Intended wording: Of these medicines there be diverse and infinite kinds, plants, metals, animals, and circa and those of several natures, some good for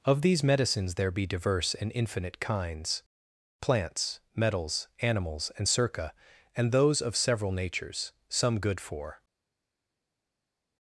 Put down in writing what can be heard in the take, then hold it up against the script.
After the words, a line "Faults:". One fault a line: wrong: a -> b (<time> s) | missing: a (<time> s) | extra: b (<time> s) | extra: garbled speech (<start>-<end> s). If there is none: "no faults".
Of these medicines there be diverse and infinite kinds, plants, metals, animals, and circa and those of several natures, some good for
Faults:
no faults